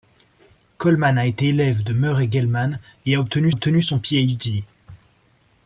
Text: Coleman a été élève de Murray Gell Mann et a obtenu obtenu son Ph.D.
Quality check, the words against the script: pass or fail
pass